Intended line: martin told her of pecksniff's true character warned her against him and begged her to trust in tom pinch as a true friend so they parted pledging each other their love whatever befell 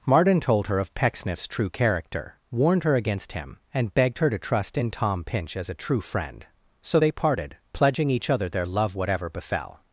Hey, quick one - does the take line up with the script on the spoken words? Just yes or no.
yes